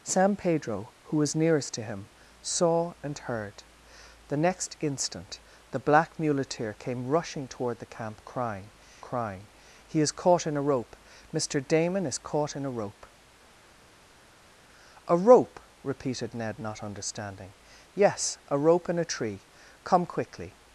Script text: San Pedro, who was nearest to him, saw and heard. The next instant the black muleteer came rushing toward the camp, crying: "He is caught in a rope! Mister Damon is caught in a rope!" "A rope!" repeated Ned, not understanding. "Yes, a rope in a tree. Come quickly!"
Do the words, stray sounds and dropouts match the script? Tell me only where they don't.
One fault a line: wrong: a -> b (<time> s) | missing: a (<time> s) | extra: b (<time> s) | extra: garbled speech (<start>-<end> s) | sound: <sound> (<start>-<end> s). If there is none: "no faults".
extra: crying (9.0 s)